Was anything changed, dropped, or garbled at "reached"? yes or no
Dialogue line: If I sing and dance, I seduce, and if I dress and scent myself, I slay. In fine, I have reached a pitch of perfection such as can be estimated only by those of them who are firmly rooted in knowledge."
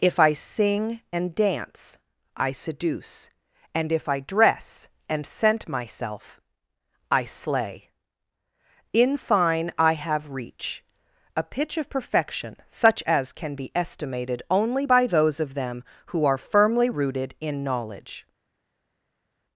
yes